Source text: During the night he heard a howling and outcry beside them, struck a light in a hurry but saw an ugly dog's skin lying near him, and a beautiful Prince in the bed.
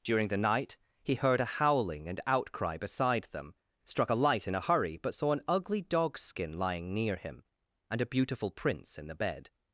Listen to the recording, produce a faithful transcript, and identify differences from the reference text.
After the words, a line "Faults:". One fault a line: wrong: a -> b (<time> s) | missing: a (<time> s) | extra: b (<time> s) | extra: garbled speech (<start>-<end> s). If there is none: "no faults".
During the night he heard a howling and outcry beside them, struck a light in a hurry but saw an ugly dog's skin lying near him, and a beautiful Prince in the bed.
Faults:
no faults